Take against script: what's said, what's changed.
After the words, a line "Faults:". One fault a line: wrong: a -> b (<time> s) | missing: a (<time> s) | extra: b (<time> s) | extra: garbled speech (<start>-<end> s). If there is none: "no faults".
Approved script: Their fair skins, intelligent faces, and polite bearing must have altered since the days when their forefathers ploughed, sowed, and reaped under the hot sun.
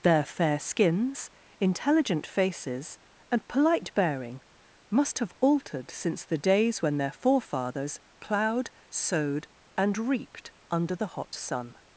Their fair skins, intelligent faces, and polite bearing must have altered since the days when their forefathers ploughed, sowed, and reaped under the hot sun.
Faults:
no faults